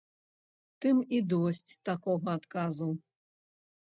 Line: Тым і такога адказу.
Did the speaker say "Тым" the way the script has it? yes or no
yes